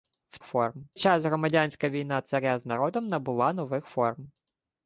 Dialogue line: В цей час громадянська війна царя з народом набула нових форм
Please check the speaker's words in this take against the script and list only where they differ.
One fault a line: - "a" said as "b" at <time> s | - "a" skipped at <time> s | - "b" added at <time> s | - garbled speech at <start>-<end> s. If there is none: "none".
- "цей" said as "форм" at 0.4 s